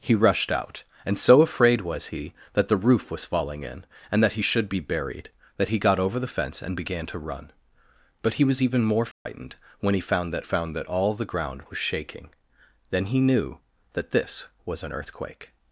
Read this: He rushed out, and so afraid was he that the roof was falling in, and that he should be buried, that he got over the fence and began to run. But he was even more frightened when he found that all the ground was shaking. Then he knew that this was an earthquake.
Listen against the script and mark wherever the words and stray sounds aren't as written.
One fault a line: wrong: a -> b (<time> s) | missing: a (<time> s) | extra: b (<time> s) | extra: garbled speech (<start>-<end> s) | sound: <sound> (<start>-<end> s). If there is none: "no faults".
sound: dropout (9.1-9.3 s)
extra: found that (10.4 s)